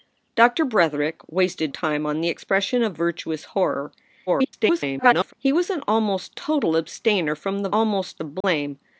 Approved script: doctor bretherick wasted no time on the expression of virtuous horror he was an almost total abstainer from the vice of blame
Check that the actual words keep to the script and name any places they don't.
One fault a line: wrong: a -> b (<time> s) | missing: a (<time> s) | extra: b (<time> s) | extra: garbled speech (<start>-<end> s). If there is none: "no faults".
missing: no (1.7 s)
extra: garbled speech (4.3-5.3 s)
wrong: vice -> almost (7.7 s)